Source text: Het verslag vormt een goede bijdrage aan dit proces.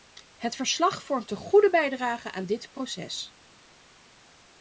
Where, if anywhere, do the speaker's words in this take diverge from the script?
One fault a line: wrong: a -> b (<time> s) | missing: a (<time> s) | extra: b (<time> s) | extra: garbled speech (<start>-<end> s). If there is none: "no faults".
no faults